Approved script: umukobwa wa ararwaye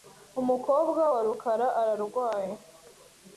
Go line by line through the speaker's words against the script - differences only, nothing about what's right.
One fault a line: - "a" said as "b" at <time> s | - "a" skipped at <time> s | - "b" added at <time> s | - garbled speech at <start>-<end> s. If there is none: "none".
- "rukara" added at 1.3 s